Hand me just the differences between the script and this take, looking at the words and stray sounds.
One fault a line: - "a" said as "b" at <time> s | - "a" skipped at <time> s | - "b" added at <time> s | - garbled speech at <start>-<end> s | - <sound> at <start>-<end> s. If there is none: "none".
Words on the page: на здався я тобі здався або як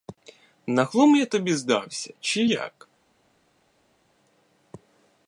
- "здався" said as "глум" at 0.8 s
- "або" said as "чи" at 2.2 s